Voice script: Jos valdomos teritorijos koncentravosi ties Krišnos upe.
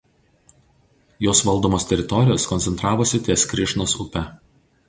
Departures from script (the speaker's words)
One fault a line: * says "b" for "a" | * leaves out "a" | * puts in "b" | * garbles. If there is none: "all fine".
all fine